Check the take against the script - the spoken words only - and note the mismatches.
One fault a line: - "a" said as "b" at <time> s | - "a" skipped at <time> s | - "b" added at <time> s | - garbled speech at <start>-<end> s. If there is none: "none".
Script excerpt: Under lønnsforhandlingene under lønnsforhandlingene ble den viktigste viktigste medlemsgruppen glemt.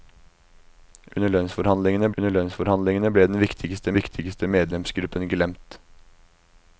none